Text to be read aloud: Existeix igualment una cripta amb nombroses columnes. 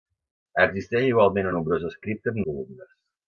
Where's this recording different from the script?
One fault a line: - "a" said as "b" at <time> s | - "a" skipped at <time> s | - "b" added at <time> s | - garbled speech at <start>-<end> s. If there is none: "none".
- "una" said as "nombroses" at 1.6 s
- "nombroses" skipped at 2.4 s